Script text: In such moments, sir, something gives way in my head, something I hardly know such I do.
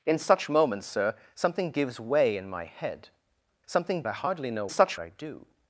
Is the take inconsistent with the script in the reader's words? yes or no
no